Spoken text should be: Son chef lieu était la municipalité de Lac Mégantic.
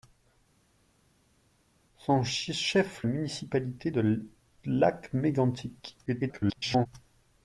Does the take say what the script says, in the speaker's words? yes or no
no